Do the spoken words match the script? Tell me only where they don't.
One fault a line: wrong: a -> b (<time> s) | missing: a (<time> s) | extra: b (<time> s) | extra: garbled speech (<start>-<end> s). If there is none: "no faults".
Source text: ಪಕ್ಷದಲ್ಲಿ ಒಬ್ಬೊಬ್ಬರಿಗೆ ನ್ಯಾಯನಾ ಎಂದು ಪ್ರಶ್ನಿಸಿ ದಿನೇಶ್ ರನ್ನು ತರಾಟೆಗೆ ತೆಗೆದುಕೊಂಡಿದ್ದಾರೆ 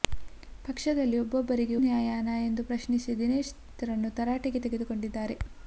no faults